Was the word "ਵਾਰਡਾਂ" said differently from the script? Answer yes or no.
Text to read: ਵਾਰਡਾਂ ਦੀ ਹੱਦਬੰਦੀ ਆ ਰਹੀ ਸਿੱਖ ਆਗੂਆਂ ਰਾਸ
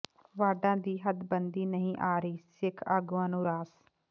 no